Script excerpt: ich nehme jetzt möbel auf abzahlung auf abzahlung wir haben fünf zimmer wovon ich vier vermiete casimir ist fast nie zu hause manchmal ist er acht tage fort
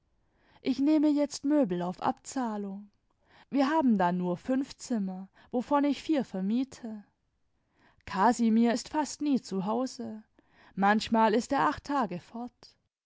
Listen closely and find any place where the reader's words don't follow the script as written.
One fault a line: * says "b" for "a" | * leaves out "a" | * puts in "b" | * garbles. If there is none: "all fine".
* says "wir haben da nur" for "auf abzahlung wir haben"